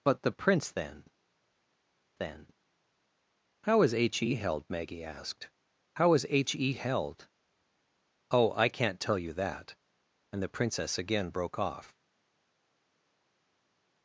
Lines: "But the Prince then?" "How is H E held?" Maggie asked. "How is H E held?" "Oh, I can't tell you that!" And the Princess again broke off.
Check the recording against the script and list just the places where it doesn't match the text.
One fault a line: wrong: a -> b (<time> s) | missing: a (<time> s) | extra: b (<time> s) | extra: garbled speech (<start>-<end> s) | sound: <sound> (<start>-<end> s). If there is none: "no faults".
extra: then (2.2 s)